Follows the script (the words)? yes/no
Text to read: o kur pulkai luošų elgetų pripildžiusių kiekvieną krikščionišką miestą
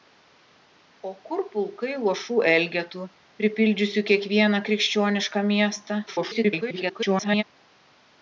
no